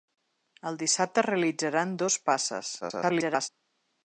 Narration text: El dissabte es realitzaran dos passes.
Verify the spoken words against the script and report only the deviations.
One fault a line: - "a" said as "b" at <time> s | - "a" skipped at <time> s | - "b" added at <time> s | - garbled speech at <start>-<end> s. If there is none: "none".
- garbled speech at 2.8-3.5 s